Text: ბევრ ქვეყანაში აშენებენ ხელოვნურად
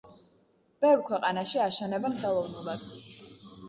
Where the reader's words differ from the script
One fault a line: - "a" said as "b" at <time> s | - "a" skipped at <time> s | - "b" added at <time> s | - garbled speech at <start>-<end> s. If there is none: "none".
none